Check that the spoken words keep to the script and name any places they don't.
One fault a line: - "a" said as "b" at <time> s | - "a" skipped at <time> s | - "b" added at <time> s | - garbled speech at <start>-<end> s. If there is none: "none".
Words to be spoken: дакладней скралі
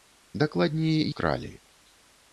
none